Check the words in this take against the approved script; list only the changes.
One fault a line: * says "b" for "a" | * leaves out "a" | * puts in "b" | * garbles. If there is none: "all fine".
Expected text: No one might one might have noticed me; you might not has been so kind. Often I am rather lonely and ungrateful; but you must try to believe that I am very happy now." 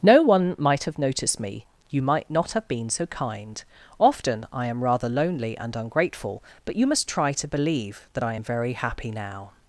* leaves out "one might"
* says "have" for "has"